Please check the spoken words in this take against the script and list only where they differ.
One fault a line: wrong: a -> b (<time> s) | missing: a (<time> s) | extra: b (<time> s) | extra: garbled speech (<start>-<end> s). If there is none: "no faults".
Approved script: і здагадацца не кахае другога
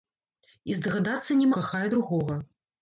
no faults